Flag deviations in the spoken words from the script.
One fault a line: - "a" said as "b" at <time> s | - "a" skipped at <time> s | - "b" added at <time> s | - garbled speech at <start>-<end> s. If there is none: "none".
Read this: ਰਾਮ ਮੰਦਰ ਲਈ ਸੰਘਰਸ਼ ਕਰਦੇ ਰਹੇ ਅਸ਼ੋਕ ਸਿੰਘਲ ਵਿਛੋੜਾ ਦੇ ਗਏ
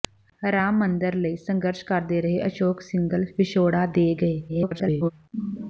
- garbled speech at 4.5-5.1 s